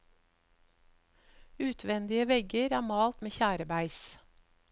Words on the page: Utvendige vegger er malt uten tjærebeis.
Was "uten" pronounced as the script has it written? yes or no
no